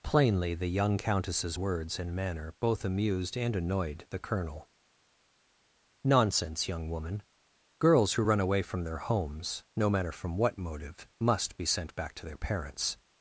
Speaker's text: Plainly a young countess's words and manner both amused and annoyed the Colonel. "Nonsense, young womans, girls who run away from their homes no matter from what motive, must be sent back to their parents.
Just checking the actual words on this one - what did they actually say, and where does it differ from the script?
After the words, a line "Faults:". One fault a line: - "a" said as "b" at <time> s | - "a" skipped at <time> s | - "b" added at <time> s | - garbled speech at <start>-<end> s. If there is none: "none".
Plainly the young countess's words and manner both amused and annoyed the Colonel. "Nonsense, young woman, girls who run away from their homes no matter from what motive, must be sent back to their parents.
Faults:
- "a" said as "the" at 0.6 s
- "womans" said as "woman" at 6.9 s